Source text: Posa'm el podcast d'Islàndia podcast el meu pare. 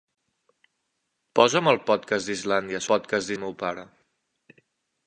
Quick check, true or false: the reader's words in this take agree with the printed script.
true